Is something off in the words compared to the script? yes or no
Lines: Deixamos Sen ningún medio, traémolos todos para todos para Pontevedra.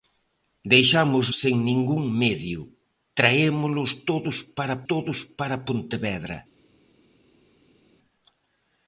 no